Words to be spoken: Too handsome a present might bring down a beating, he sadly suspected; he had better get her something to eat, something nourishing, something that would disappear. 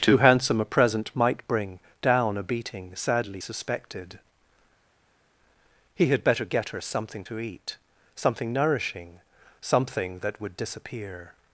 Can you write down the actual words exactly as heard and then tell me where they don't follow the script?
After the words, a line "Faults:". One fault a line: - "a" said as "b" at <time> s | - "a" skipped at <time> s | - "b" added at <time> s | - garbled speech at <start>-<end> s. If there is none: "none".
Too handsome a present might bring down a beating, sadly suspected; he had better get her something to eat, something nourishing, something that would disappear.
Faults:
- "he" skipped at 3.0 s